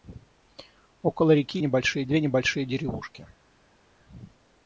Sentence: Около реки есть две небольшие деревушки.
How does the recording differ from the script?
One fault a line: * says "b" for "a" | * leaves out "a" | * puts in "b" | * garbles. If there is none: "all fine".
* says "небольшие" for "есть"